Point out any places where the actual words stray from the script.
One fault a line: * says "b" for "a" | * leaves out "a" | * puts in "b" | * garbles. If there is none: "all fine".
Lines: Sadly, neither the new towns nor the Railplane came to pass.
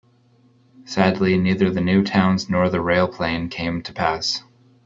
all fine